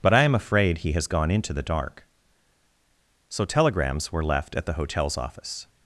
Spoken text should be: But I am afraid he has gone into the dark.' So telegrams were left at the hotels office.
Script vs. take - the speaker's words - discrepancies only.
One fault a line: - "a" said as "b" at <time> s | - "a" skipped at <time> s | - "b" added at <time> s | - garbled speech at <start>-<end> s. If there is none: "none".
none